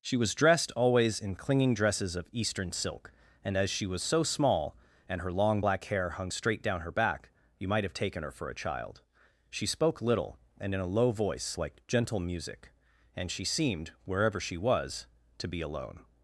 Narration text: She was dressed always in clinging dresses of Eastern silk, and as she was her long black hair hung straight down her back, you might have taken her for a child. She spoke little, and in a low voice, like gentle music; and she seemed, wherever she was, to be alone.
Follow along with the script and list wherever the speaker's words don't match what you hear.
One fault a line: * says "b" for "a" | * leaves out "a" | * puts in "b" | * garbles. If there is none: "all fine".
* puts in "so small and"